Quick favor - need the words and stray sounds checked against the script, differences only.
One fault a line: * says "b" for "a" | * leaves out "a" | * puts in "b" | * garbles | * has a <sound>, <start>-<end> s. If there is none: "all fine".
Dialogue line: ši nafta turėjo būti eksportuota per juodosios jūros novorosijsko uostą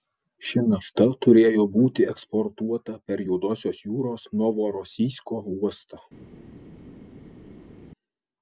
all fine